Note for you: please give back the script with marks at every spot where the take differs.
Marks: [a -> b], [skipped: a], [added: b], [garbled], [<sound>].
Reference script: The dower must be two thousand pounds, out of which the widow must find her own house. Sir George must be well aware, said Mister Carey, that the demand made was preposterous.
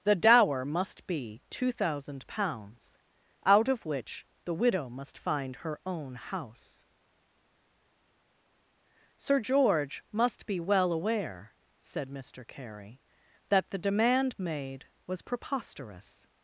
The dower must be two thousand pounds, out of which the widow must find her own house. Sir George must be well aware, said Mister Carey, that the demand made was preposterous.